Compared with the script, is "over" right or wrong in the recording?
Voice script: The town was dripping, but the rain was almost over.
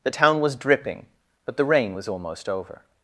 right